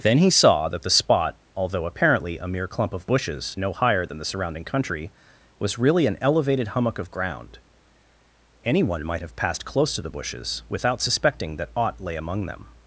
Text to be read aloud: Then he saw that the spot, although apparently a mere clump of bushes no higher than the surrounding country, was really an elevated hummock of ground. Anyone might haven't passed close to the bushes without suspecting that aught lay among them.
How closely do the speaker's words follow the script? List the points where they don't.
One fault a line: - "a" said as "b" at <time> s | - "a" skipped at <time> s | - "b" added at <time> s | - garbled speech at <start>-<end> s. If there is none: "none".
- "haven't" said as "have" at 9.2 s